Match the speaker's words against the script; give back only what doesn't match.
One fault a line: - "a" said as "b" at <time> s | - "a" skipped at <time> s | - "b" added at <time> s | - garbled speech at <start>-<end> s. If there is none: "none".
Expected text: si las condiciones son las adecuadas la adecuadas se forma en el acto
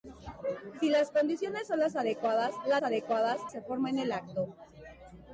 none